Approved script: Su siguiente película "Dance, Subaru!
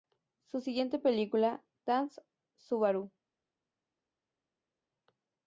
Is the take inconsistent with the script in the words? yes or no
no